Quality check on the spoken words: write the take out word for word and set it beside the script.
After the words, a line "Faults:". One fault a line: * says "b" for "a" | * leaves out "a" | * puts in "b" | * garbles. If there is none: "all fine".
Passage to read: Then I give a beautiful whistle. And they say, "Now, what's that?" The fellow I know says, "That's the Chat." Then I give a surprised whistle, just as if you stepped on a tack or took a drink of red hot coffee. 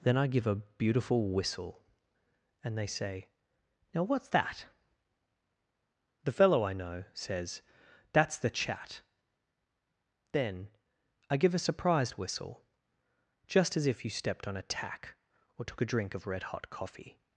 Then I give a beautiful whistle. And they say, "Now, what's that?" The fellow I know says, "That's the Chat." Then I give a surprised whistle, just as if you stepped on a tack or took a drink of red hot coffee.
Faults:
all fine